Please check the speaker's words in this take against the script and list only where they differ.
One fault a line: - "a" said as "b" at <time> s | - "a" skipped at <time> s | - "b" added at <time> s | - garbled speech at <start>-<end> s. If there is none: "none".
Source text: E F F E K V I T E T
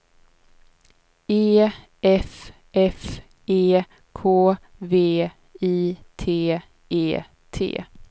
none